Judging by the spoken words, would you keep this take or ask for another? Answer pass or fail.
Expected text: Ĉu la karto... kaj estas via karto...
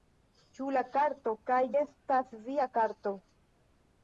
pass